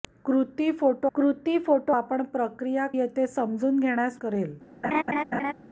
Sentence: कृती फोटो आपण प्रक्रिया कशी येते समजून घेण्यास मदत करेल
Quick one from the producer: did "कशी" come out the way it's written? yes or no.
no